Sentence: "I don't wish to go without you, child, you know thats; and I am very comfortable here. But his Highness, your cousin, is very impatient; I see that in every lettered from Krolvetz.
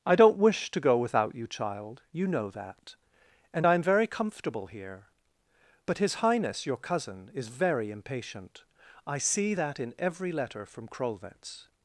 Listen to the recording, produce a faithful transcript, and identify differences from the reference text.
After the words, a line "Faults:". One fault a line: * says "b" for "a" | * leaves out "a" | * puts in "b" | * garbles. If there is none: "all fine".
"I don't wish to go without you, child, you know that; and I am very comfortable here. But his Highness, your cousin, is very impatient; I see that in every letter from Krolvetz.
Faults:
* says "that" for "thats"
* says "letter" for "lettered"